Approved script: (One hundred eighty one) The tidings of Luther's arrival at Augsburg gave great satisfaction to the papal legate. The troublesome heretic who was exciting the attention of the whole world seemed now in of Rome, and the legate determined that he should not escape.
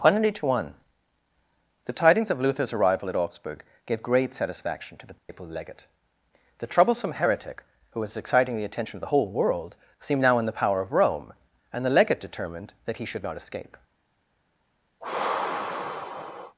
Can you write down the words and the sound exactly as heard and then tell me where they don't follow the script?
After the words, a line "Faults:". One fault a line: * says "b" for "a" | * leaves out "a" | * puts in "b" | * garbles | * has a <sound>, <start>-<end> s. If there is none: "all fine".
(One hundred eighty one) The tidings of Luther's arrival at Augsburg gave great satisfaction to the papal legate. The troublesome heretic who was exciting the attention of the whole world seemed now in the power of Rome, and the legate determined that he should not escape.
Faults:
* has a dropout, 5.2-5.3 s
* puts in "the power"
* has a sigh, 15.0-16.6 s